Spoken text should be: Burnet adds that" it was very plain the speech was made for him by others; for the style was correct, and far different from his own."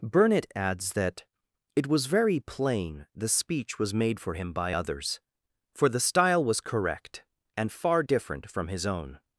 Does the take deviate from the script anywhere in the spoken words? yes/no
no